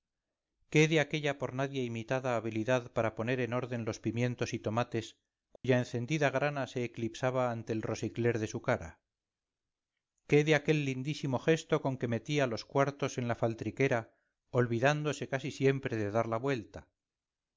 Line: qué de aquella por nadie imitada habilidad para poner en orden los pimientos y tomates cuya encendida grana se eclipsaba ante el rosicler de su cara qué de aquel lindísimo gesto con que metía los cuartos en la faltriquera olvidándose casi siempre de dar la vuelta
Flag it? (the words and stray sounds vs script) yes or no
yes